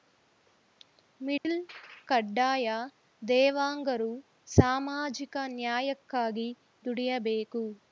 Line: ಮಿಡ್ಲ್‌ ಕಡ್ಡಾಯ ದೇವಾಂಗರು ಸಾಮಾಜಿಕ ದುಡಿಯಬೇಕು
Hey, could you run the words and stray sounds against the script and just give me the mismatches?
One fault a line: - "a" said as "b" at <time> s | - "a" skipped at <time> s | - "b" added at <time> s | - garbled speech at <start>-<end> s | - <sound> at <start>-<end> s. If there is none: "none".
- dropout at 1.4-1.4 s
- "ನ್ಯಾಯಕ್ಕಾಗಿ" added at 5.6 s